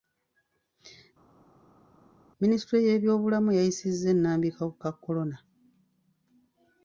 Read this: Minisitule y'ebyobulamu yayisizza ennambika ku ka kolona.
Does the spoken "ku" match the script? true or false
true